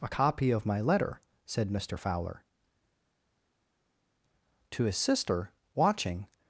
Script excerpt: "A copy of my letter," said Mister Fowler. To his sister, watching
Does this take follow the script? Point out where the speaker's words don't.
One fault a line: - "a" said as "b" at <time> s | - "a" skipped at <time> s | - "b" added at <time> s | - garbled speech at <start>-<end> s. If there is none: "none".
none